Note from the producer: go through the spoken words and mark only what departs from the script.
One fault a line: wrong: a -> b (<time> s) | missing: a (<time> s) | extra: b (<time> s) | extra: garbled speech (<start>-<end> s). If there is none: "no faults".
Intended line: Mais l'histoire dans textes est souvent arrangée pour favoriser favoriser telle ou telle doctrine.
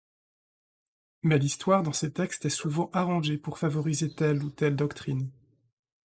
extra: ces (1.9 s)
missing: favoriser (4.1 s)